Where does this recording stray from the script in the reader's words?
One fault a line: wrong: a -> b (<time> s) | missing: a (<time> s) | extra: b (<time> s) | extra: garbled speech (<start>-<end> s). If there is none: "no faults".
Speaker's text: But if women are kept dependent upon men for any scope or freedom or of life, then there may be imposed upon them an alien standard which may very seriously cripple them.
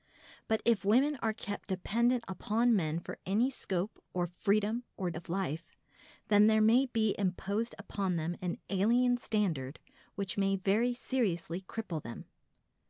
no faults